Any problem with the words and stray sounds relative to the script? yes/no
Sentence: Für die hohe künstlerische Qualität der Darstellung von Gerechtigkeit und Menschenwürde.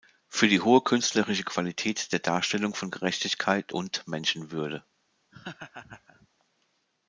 yes